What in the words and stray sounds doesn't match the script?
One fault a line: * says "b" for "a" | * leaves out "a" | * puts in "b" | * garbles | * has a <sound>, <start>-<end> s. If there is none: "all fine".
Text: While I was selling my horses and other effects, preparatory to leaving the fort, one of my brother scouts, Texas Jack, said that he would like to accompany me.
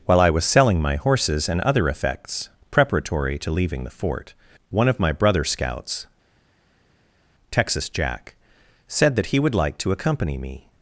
all fine